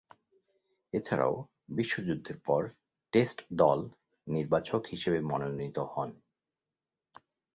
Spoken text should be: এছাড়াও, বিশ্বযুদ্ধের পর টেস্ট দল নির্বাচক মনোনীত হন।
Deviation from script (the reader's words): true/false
true